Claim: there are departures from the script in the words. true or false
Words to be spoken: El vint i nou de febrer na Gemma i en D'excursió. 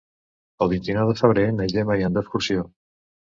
false